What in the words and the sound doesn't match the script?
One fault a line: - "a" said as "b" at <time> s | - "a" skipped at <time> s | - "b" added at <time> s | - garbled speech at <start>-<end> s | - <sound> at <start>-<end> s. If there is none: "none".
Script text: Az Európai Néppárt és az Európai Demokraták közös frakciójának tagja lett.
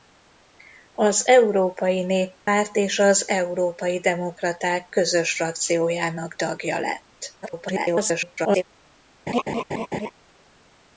- dropout at 2.4-2.5 s
- garbled speech at 7.4-8.6 s
- laugh at 9.3-10.1 s